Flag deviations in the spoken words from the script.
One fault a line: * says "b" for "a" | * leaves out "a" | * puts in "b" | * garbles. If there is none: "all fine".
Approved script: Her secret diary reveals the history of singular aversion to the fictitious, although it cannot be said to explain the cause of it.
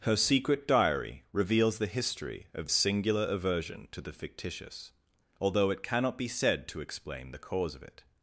all fine